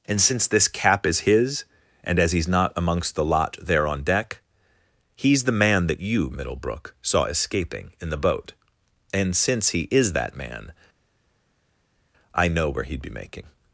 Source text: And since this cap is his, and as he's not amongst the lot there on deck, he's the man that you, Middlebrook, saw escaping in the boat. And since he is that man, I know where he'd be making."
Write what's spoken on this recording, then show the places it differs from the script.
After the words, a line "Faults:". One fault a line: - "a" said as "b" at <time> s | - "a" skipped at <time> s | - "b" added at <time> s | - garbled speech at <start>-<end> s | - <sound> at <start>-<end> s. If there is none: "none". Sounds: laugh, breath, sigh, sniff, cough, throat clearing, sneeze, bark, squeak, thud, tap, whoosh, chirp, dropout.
And since this cap is his, and as he's not amongst the lot there on deck, he's the man that you, Middlebrook, saw escaping in the boat. And since he is that man, I know where he'd be making."
Faults:
none